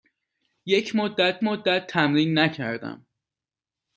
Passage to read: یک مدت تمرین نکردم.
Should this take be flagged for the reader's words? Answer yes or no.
yes